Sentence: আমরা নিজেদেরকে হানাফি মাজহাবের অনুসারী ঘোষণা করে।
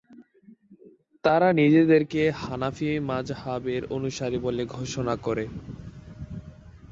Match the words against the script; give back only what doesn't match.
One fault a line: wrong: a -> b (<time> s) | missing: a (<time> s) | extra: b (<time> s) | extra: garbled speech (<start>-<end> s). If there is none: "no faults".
wrong: আমরা -> তারা (1.2 s)
extra: বলে (4.5 s)